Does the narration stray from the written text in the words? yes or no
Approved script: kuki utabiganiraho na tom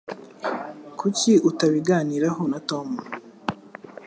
no